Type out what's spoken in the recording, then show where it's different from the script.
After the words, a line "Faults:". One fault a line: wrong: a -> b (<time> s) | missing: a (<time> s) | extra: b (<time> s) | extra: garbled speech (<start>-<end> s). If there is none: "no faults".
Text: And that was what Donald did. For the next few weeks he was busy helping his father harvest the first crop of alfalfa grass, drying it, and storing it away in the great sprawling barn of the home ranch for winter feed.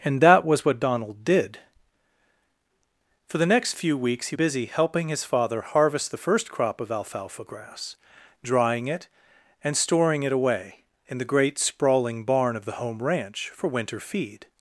And that was what Donald did. For the next few weeks he busy helping his father harvest the first crop of alfalfa grass, drying it, and storing it away in the great sprawling barn of the home ranch for winter feed.
Faults:
missing: was (4.3 s)